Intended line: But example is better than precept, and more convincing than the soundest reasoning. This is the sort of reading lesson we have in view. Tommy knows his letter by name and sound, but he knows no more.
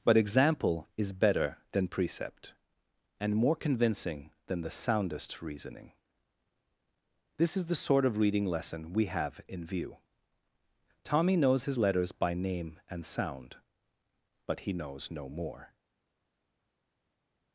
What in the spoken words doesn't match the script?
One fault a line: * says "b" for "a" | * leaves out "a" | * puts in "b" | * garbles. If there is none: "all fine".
* says "letters" for "letter"